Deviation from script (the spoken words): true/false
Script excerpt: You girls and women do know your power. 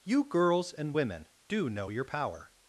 false